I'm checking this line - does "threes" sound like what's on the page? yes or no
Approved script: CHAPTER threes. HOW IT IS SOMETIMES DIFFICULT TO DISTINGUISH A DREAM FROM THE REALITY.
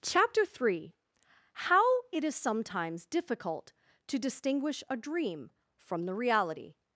no